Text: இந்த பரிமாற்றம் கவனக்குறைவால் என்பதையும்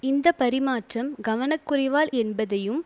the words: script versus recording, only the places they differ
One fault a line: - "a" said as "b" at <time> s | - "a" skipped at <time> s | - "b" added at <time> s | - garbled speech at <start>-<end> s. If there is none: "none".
none